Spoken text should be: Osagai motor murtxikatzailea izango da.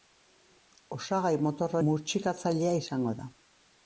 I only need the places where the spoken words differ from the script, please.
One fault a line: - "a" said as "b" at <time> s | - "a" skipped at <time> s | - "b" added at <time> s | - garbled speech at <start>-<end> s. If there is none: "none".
none